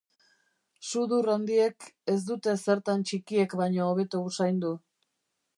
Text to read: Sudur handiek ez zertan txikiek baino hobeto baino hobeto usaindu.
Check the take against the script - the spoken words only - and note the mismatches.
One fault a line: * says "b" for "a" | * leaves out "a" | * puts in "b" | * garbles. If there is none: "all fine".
* puts in "dute"
* leaves out "baino hobeto"